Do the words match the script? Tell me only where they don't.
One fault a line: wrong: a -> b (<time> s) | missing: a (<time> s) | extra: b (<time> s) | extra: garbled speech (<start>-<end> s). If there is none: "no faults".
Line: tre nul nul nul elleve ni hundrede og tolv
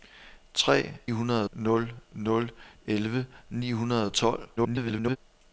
wrong: nul -> hundrede (1.1 s)
extra: garbled speech (4.6-5.2 s)